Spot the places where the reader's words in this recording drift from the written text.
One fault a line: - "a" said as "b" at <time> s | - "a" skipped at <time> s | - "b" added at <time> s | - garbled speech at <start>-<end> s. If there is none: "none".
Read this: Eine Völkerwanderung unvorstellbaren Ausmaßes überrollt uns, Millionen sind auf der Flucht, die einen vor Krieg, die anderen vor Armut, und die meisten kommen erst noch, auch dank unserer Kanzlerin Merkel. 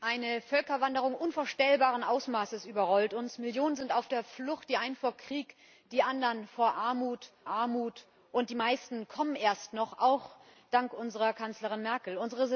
- "Armut" added at 7.5 s